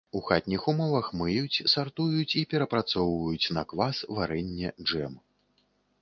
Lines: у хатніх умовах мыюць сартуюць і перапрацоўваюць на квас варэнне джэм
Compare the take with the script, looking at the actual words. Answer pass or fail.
pass